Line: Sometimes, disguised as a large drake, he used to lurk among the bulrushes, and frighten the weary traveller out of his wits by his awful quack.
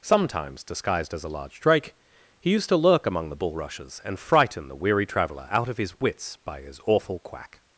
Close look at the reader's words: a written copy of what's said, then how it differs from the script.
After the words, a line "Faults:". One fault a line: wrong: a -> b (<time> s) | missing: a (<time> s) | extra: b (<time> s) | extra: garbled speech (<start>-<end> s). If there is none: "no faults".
Sometimes, disguised as a large drake, he used to lurk among the bulrushes, and frighten the weary traveller out of his wits by his awful quack.
Faults:
no faults